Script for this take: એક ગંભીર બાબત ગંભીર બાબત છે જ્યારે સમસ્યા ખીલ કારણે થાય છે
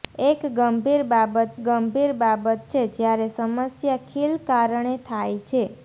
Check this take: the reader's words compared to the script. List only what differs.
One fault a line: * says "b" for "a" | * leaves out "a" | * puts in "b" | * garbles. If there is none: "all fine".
all fine